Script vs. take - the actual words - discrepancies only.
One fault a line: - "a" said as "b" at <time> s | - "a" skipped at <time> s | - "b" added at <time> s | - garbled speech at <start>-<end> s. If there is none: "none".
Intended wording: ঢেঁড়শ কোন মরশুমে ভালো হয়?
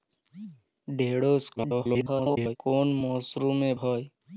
- garbled speech at 1.6-2.6 s
- "ভালো" skipped at 3.7 s